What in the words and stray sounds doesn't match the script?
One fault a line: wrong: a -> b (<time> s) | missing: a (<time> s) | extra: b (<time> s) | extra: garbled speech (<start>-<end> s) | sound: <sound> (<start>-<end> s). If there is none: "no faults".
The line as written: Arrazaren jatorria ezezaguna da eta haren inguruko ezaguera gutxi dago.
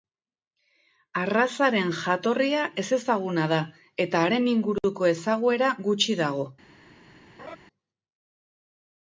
sound: laugh (7.4-7.6 s)